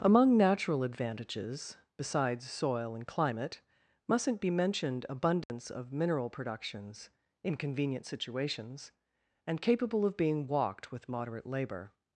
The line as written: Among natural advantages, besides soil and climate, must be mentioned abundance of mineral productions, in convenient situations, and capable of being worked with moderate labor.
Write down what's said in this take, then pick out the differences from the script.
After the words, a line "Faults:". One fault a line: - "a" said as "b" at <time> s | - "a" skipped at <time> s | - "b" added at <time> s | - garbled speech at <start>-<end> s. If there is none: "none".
Among natural advantages, besides soil and climate, mustn't be mentioned abundance of mineral productions, in convenient situations, and capable of being walked with moderate labor.
Faults:
- "must" said as "mustn't" at 4.1 s
- "worked" said as "walked" at 10.5 s